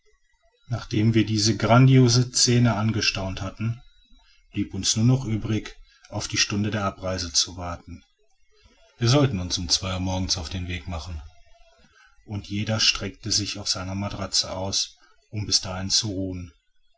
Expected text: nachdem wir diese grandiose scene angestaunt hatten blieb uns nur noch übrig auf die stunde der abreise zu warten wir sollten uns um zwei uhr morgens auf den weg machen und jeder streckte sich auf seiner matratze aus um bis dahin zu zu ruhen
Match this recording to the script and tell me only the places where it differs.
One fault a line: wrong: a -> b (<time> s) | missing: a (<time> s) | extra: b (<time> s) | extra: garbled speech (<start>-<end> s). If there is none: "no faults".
missing: zu (16.1 s)